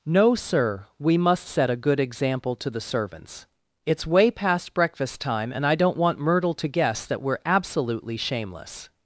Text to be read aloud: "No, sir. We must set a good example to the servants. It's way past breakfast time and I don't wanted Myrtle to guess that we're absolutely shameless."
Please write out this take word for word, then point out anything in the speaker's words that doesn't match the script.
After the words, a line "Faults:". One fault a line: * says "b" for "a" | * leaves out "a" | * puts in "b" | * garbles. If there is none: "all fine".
"No, sir. We must set a good example to the servants. It's way past breakfast time and I don't want Myrtle to guess that we're absolutely shameless."
Faults:
* says "want" for "wanted"